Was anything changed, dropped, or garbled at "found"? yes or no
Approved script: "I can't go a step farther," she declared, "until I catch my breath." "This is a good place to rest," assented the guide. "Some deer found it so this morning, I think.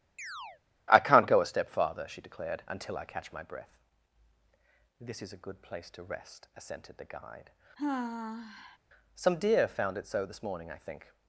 no